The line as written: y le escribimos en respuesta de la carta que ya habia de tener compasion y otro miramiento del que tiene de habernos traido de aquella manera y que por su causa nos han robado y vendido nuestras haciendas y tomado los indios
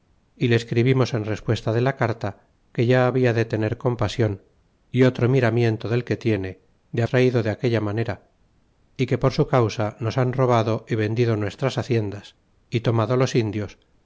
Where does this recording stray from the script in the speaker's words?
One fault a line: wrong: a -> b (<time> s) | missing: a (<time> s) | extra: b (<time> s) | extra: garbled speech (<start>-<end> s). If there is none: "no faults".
missing: habernos (7.0 s)